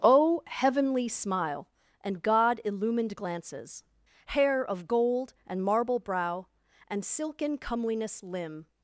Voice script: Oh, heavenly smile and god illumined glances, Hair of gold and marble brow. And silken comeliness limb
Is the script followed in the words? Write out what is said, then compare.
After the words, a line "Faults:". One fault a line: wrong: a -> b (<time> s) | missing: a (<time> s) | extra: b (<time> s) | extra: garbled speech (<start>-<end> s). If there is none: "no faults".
Oh, heavenly smile and god illumined glances, Hair of gold and marble brow. And silken comeliness limb
Faults:
no faults